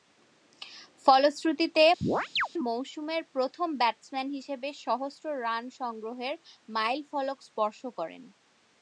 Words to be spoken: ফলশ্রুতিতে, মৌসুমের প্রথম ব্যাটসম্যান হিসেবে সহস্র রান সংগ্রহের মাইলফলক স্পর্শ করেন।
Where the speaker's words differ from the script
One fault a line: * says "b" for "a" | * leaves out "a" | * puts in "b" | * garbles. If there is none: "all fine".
all fine